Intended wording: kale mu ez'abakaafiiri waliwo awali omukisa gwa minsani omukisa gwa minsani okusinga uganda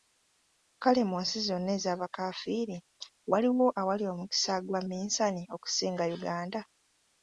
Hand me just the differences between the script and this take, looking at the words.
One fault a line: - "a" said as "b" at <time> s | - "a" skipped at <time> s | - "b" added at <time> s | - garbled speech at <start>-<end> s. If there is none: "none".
- "nsi zonna" added at 1.2 s
- "omukisa gwa minsani" skipped at 5.4 s